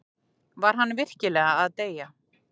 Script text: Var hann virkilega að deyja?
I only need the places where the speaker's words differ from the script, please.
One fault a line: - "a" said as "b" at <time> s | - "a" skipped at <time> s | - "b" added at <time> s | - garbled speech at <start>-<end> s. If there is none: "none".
none